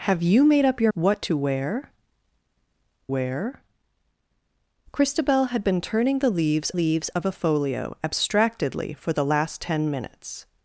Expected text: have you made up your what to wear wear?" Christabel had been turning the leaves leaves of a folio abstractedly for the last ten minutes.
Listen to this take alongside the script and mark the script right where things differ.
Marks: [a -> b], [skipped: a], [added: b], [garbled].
have you made up your what to wear wear?" Christabel had been turning the leaves leaves of a folio abstractedly for the last ten minutes.